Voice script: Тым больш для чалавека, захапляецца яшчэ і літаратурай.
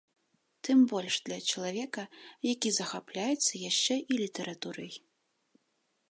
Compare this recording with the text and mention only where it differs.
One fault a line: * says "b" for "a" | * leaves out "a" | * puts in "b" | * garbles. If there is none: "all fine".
* puts in "які"